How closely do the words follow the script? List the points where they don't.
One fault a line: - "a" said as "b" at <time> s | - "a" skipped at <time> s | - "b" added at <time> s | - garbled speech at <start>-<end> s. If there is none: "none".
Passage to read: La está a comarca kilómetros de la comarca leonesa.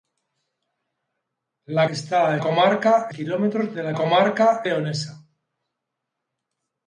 none